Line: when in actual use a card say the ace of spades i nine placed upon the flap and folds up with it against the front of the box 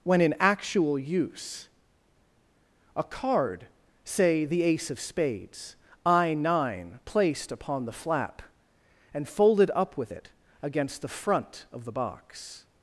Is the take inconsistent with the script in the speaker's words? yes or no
yes